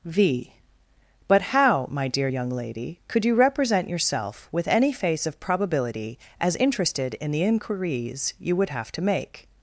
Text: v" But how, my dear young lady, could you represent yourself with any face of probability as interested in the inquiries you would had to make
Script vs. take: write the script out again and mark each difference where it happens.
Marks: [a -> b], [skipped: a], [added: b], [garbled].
v" But how, my dear young lady, could you represent yourself with any face of probability as interested in the inquiries you would [had -> have] to make